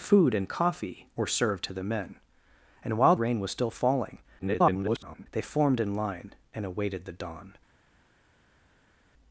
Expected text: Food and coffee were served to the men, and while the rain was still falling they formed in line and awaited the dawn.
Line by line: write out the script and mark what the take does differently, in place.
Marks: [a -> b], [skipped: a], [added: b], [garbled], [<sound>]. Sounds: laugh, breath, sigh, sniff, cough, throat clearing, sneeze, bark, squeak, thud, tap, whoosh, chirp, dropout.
Food and coffee were served to the men, and while [skipped: the] rain was still falling [garbled] they formed in line and awaited the dawn.